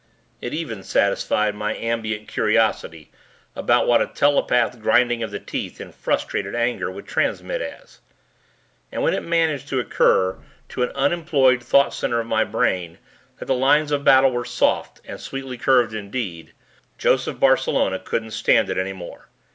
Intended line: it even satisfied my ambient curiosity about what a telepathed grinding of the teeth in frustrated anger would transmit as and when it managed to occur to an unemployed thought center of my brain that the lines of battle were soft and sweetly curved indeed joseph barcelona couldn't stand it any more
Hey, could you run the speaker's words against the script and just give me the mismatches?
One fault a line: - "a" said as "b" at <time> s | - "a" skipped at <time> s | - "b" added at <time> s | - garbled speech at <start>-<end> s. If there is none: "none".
none